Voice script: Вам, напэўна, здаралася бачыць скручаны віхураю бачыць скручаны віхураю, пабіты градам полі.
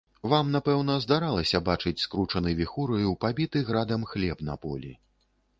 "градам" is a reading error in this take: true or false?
true